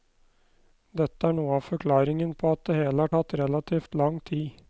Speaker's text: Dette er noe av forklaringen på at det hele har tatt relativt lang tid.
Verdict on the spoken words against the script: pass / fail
pass